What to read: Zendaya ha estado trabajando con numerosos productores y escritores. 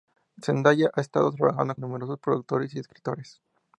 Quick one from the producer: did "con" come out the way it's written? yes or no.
no